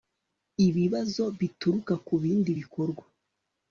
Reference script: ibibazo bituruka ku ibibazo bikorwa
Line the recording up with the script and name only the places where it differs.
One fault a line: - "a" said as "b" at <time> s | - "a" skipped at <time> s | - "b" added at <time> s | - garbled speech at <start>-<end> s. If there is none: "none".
- "ibibazo" said as "bindi" at 2.2 s